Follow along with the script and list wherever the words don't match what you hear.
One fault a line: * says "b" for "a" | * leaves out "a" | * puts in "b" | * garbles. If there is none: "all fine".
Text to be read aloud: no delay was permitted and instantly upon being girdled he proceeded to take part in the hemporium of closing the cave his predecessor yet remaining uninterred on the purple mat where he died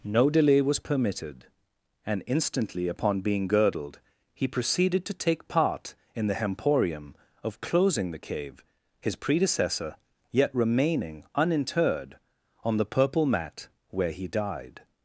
all fine